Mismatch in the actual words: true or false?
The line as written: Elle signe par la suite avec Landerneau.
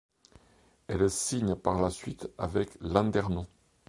false